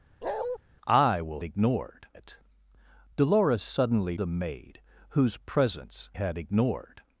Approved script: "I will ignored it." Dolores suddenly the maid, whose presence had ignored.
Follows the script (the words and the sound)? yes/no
no